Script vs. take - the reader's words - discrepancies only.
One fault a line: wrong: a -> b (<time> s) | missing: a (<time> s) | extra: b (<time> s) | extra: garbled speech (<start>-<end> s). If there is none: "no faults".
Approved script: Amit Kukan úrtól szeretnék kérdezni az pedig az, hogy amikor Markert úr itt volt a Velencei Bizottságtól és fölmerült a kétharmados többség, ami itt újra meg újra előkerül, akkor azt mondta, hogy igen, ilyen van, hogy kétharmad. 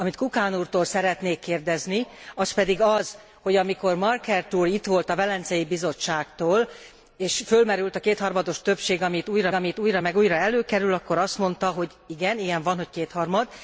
extra: ami itt újra (9.5 s)